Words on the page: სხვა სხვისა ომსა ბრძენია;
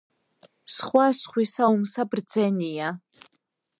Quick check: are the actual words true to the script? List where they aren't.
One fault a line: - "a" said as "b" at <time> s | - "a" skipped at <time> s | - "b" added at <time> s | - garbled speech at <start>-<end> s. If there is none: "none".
none